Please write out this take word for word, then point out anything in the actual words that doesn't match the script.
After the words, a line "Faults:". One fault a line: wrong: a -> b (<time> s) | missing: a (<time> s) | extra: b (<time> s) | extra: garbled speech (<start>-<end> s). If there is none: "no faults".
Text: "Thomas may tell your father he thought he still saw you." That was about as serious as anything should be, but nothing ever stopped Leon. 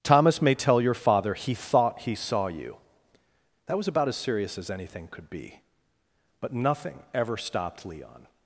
"Thomas may tell your father he thought he saw you." That was about as serious as anything could be, but nothing ever stopped Leon.
Faults:
missing: still (2.1 s)
wrong: should -> could (5.1 s)